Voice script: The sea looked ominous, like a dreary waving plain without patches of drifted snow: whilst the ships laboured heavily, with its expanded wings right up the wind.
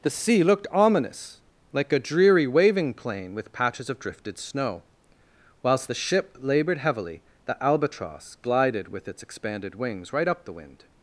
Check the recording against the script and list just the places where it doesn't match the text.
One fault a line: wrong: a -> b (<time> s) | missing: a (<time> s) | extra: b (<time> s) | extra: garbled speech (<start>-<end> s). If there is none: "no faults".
wrong: without -> with (3.4 s)
wrong: ships -> ship (5.9 s)
extra: the albatross glided (7.5 s)